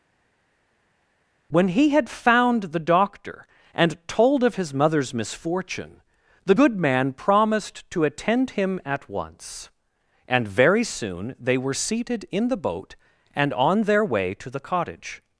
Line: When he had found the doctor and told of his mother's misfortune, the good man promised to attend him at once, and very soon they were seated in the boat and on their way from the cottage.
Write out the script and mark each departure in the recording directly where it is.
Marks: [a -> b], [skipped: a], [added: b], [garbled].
When he had found the doctor and told of his mother's misfortune, the good man promised to attend him at once, and very soon they were seated in the boat and on their way [from -> to] the cottage.